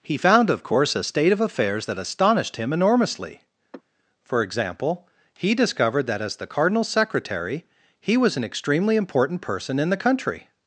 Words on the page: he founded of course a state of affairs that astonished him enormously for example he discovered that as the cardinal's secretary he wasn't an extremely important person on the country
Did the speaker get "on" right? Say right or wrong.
wrong